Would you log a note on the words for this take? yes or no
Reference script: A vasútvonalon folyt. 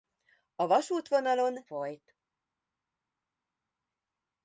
no